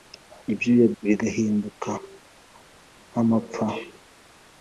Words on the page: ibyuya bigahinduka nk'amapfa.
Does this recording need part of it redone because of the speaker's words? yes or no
no